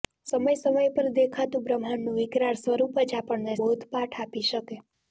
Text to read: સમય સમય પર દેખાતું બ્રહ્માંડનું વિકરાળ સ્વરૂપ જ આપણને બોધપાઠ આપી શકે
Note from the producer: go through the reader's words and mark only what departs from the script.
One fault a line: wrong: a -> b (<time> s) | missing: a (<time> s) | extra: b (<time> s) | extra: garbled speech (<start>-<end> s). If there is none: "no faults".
no faults